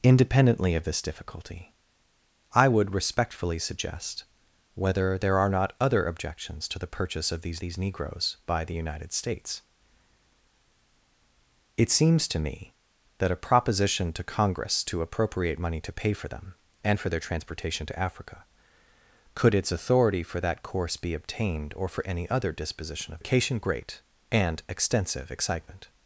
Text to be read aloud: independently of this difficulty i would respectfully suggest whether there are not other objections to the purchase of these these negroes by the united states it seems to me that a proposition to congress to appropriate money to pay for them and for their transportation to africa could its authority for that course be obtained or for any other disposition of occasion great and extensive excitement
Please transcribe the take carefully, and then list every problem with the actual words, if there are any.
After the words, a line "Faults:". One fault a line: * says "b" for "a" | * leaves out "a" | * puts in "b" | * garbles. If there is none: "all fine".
independently of this difficulty i would respectfully suggest whether there are not other objections to the purchase of these these negroes by the united states it seems to me that a proposition to congress to appropriate money to pay for them and for their transportation to africa could its authority for that course be obtained or for any other disposition of occasion great and extensive excitement
Faults:
all fine